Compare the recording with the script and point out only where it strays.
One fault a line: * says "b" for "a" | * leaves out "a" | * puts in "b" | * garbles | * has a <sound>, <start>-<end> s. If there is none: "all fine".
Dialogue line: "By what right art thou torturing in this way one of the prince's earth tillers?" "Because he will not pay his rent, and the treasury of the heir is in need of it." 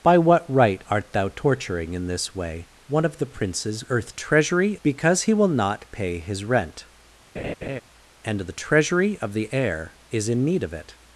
* says "treasury" for "tillers"
* has a laugh, 7.4-7.8 s